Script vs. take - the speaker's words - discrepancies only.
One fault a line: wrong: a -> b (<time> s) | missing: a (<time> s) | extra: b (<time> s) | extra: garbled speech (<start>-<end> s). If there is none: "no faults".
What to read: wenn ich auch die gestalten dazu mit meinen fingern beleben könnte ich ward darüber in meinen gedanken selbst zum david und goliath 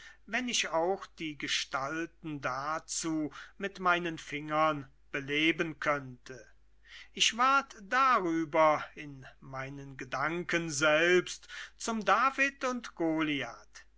no faults